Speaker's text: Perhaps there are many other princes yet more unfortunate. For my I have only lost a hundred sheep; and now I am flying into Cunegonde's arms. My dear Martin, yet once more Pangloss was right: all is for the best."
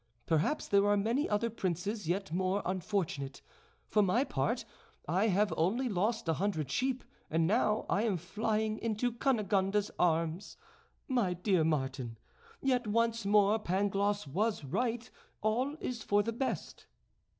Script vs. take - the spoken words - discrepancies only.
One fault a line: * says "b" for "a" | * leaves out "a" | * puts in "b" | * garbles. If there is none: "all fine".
* puts in "part"